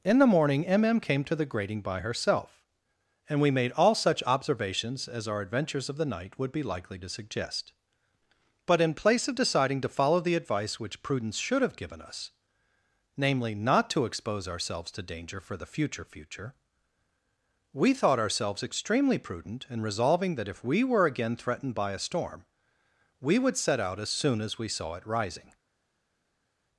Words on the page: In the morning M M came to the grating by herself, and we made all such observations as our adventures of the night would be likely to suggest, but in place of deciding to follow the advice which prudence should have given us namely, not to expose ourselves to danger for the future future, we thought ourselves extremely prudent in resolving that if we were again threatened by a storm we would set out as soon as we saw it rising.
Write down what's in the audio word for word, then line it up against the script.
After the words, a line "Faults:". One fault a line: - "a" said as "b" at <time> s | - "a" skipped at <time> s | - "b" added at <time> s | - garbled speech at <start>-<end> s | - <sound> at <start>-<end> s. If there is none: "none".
In the morning M M came to the grating by herself, and we made all such observations as our adventures of the night would be likely to suggest, but in place of deciding to follow the advice which prudence should have given us namely, not to expose ourselves to danger for the future future, we thought ourselves extremely prudent in resolving that if we were again threatened by a storm we would set out as soon as we saw it rising.
Faults:
none